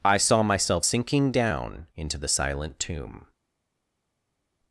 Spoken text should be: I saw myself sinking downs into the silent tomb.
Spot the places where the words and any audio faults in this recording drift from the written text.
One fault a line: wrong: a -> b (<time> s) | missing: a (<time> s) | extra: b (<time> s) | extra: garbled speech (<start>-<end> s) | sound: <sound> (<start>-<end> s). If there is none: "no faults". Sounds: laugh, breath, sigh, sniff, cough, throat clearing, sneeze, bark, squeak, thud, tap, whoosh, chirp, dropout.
wrong: downs -> down (1.3 s)